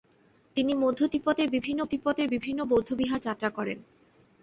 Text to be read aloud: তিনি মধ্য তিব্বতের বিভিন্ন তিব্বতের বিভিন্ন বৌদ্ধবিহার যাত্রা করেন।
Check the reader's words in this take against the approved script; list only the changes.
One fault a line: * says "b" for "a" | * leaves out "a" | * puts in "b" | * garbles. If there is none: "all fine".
all fine